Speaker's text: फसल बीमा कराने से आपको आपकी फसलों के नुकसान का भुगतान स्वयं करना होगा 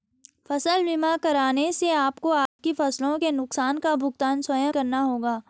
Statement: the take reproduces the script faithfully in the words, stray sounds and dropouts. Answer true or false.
false